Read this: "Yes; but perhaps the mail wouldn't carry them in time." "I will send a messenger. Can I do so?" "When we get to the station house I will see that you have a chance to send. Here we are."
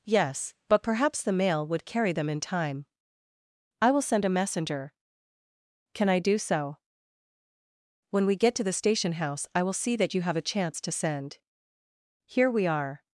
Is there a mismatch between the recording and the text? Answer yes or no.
yes